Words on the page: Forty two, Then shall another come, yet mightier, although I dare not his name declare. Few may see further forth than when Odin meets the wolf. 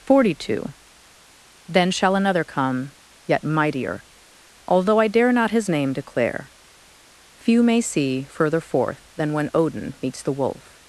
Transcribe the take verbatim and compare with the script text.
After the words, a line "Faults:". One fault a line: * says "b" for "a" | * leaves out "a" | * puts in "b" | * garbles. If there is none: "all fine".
Forty two, Then shall another come, yet mightier, although I dare not his name declare. Few may see further forth than when Odin meets the wolf.
Faults:
all fine